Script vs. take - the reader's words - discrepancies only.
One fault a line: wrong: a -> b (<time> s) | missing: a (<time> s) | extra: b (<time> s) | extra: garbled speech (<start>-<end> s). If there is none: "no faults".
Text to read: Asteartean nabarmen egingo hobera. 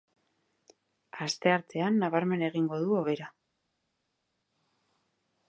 extra: du (2.9 s)